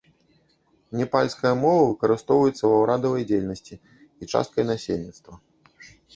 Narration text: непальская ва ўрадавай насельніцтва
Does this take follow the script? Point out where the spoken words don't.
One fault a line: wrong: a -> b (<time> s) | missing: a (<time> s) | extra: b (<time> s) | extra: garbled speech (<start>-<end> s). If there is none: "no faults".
extra: мова выкарыстоўваецца (1.6 s)
extra: дзейнасці і часткай (3.3 s)